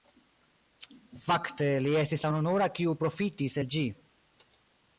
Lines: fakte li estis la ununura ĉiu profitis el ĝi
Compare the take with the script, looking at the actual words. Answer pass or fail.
fail